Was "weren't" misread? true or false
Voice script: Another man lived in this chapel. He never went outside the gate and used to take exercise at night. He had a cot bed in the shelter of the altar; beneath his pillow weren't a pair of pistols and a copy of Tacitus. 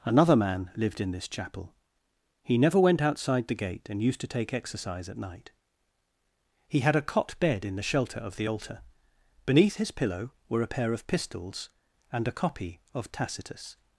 true